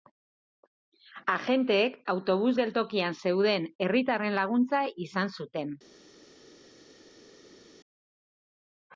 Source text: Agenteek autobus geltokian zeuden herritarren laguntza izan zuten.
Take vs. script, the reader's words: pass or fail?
pass